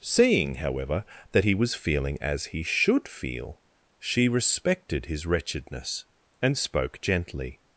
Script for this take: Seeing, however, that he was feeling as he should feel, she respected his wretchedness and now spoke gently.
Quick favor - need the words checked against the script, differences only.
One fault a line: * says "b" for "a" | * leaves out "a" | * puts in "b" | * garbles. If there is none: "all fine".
* leaves out "now"